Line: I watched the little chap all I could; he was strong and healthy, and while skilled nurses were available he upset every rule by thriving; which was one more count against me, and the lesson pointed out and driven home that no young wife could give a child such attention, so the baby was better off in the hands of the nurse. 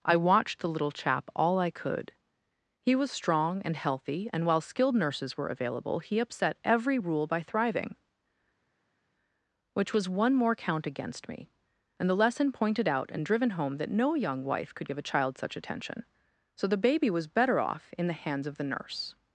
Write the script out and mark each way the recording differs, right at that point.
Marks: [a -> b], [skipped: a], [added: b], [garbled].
I watched the little chap all I could; he was strong and healthy, and while skilled nurses were available he upset every rule by thriving; which was one more count against me, and the lesson pointed out and driven home that no young wife could give a child such attention, so the baby was better off in the hands of the nurse.